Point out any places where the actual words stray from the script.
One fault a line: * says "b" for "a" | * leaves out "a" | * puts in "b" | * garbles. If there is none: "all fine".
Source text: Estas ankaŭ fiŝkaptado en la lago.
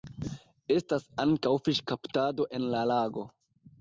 all fine